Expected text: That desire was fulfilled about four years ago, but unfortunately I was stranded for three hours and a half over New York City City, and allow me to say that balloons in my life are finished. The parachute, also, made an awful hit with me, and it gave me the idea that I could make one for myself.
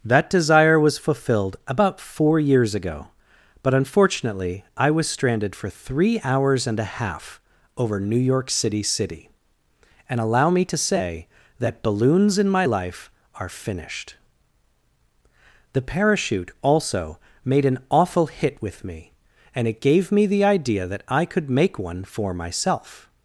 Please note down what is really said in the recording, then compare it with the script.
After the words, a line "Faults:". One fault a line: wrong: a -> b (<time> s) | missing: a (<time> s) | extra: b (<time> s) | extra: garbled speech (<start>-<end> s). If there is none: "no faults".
That desire was fulfilled about four years ago, but unfortunately I was stranded for three hours and a half over New York City City, and allow me to say that balloons in my life are finished. The parachute, also, made an awful hit with me, and it gave me the idea that I could make one for myself.
Faults:
no faults